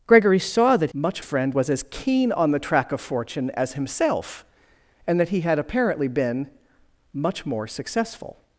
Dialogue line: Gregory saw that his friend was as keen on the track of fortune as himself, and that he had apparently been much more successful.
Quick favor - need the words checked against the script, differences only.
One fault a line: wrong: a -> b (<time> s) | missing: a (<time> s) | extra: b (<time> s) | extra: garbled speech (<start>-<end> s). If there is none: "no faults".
wrong: his -> much (0.9 s)